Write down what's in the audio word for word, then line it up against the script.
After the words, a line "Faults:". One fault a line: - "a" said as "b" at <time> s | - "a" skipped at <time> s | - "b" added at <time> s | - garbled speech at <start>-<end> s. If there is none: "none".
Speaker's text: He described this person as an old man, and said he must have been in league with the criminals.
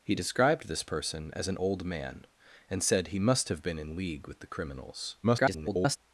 He described this person as an old man, and said he must have been in league with the criminals. [garbled]
Faults:
- garbled speech at 5.2-6.0 s